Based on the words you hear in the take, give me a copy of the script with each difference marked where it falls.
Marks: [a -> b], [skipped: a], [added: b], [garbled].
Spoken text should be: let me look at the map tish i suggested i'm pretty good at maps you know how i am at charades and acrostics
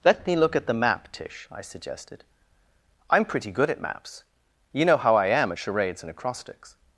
let me look at the map tish i suggested i'm pretty good at maps you know how i am at charades and acrostics